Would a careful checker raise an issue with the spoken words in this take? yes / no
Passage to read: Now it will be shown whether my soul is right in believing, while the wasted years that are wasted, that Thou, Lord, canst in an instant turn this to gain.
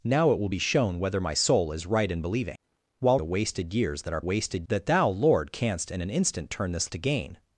no